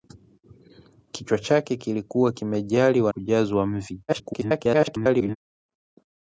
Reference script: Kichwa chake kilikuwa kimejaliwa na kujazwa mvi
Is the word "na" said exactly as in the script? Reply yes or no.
no